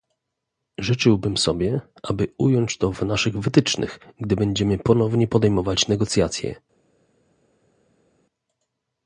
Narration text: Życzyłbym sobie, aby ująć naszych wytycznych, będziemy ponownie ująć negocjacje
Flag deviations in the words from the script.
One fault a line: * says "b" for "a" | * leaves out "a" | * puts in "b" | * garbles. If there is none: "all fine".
* puts in "to w"
* puts in "gdy"
* says "podejmować" for "ująć"